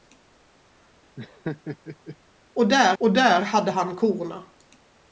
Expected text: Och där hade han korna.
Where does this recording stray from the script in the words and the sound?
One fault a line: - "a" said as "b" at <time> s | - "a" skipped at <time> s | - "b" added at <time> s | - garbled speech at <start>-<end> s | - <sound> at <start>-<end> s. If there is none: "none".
- laugh at 1.2-2.2 s
- "och där" added at 3.0 s